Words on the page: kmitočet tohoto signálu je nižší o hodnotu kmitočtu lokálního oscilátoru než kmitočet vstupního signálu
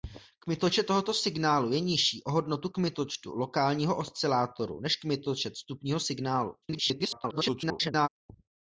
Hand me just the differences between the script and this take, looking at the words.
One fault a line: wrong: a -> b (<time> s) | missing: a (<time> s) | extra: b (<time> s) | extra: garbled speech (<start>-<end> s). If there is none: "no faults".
extra: garbled speech (6.6-8.1 s)